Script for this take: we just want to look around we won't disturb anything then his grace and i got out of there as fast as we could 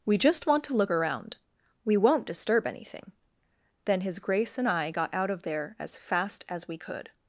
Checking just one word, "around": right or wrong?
right